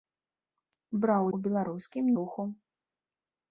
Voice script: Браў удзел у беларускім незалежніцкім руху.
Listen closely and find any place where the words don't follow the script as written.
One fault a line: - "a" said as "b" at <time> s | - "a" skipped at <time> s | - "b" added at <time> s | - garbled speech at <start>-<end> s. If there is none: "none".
- "удзел" skipped at 1.2 s
- "незалежніцкім" skipped at 2.0 s